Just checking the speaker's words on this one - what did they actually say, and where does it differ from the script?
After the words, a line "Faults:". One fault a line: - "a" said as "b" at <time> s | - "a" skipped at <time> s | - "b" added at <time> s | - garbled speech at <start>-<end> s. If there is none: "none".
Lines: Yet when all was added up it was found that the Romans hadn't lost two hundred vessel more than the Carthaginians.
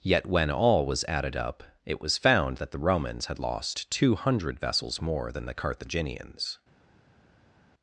Yet when all was added up it was found that the Romans had lost two hundred vessels more than the Carthaginians.
Faults:
- "hadn't" said as "had" at 3.2 s
- "vessel" said as "vessels" at 4.6 s